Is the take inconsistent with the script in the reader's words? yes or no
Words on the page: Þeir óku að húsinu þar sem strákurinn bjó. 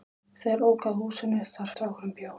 yes